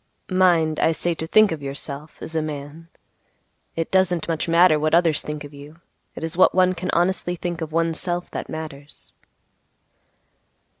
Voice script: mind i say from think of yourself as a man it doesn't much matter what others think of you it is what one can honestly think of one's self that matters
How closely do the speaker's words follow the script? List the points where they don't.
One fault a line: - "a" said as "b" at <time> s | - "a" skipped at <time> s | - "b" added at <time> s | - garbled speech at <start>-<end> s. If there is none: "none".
- "from" said as "to" at 1.1 s